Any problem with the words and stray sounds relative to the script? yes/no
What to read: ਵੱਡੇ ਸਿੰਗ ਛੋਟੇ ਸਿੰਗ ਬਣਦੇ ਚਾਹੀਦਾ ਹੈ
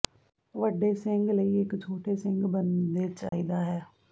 yes